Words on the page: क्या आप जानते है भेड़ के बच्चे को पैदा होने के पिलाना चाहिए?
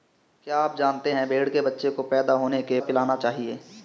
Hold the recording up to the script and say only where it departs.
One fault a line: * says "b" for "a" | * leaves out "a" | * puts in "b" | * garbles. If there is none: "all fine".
all fine